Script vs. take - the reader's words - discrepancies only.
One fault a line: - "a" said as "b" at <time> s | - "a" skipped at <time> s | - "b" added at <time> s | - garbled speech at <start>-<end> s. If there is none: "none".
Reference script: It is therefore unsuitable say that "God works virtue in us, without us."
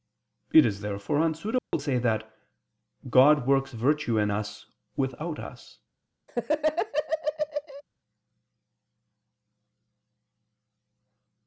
none